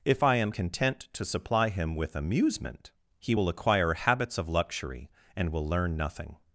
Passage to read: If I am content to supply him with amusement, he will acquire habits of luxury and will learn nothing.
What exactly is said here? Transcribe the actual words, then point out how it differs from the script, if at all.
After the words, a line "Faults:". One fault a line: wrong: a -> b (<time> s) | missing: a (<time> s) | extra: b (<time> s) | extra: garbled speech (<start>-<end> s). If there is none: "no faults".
If I am content to supply him with amusement, he will acquire habits of luxury and will learn nothing.
Faults:
no faults